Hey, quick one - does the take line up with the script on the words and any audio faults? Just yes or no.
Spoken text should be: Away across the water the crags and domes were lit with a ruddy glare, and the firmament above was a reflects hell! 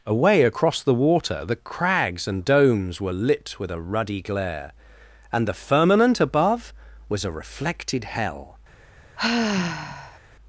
no